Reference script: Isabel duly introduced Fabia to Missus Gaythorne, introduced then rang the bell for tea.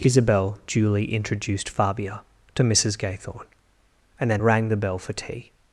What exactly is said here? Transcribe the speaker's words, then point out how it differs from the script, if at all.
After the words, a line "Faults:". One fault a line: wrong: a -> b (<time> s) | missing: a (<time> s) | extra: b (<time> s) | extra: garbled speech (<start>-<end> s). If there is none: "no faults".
Isabel duly introduced Fabia to Missus Gaythorne, and then rang the bell for tea.
Faults:
wrong: introduced -> and (4.2 s)